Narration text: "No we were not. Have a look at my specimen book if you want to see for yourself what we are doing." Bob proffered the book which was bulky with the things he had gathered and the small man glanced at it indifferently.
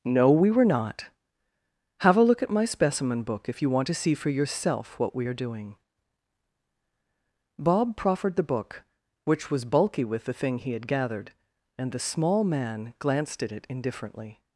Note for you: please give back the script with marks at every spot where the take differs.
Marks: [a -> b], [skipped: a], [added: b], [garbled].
"No we were not. Have a look at my specimen book if you want to see for yourself what we are doing." Bob proffered the book which was bulky with the [things -> thing] he had gathered and the small man glanced at it indifferently.